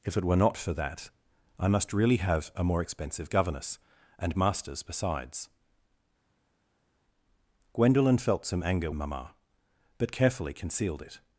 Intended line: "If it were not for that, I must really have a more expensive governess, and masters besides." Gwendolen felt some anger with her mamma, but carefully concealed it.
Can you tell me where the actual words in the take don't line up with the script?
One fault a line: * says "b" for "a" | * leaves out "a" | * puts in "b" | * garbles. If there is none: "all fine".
* leaves out "with her"